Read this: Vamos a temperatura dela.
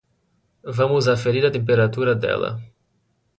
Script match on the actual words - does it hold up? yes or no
no